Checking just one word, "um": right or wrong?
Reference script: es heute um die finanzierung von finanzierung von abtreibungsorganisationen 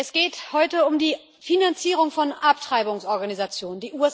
right